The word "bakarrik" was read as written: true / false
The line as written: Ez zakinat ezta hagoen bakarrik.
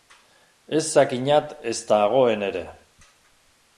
false